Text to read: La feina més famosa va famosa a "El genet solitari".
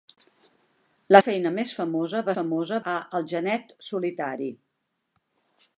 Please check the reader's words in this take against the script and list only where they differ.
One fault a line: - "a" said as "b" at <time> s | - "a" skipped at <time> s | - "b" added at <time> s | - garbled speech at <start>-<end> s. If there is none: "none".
none